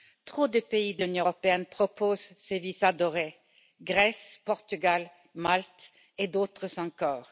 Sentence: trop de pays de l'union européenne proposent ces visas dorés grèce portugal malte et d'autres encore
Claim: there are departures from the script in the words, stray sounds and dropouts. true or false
false